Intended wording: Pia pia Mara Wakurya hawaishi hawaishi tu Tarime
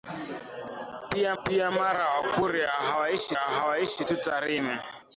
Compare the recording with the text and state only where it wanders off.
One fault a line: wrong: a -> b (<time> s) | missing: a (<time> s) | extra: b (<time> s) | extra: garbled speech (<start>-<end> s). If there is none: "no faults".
no faults